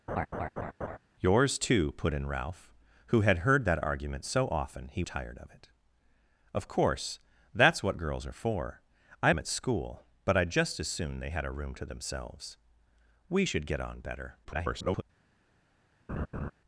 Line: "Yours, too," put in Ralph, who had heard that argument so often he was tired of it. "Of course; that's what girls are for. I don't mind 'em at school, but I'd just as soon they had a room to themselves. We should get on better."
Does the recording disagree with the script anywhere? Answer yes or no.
yes